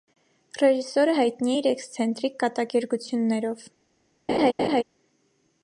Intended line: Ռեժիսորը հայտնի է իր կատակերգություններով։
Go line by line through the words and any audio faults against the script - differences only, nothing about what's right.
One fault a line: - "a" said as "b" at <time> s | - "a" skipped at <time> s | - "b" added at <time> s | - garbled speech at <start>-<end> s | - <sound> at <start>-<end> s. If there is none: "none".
- "էքսցենտրիկ" added at 1.7 s
- laugh at 4.3-4.8 s